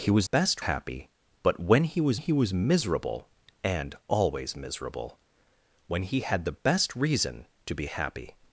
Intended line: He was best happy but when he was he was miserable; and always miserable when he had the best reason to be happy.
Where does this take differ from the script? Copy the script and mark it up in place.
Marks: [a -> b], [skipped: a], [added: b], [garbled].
He was best happy but when he was he was miserable; and always miserable when he had the best reason to be happy.